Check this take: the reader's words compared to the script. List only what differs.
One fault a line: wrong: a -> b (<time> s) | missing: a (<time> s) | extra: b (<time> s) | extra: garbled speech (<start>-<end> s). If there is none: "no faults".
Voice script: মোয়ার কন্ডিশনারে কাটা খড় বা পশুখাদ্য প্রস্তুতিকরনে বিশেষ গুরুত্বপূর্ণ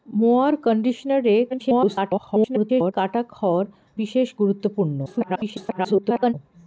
extra: garbled speech (1.5-2.9 s)
missing: বা পশুখাদ্য প্রস্তুতিকরনে (3.7 s)
extra: garbled speech (5.0-6.3 s)